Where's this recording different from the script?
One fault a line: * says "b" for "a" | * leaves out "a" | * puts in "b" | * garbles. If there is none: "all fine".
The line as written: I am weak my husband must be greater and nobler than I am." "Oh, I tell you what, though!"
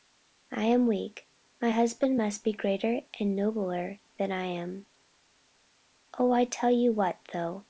all fine